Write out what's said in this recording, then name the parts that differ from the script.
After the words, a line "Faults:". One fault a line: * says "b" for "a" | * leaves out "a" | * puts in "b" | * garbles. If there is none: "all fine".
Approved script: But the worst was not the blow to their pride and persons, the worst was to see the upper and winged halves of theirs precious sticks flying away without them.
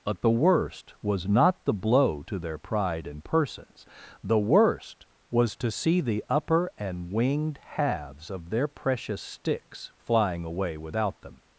But the worst was not the blow to their pride and persons, the worst was to see the upper and winged halves of their precious sticks flying away without them.
Faults:
* says "their" for "theirs"